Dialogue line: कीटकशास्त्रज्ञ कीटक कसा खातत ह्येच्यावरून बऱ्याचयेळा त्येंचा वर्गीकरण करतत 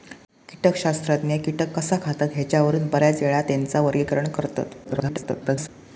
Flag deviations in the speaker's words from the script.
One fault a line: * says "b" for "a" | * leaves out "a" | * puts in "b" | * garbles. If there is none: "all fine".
* garbles